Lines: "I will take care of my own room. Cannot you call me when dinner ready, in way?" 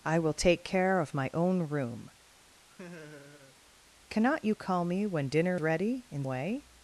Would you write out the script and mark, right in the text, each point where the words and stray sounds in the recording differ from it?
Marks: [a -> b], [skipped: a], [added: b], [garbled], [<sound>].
"I will take care of my own room. [laugh] Cannot you call me when dinner ready, in way?"